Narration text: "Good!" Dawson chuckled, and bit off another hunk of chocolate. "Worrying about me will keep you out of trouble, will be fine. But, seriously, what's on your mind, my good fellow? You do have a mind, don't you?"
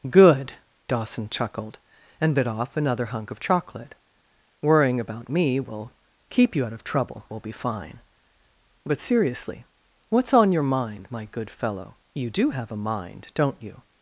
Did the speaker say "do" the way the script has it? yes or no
yes